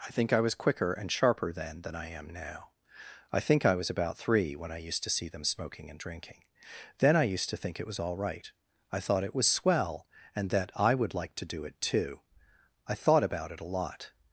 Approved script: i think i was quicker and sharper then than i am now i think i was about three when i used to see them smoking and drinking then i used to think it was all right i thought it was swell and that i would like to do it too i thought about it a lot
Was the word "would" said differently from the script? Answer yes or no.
no